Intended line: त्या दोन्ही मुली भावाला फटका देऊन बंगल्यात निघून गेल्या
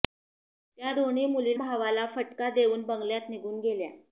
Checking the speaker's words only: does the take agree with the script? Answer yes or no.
yes